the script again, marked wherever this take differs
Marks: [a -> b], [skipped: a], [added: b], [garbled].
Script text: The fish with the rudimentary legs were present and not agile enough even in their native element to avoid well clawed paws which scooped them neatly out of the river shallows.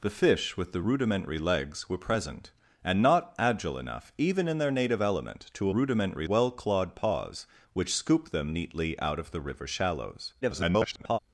The fish with the rudimentary legs were present and not agile enough even in their native element to [avoid -> rudimentary] well clawed paws which scooped them neatly out of the river shallows. [garbled]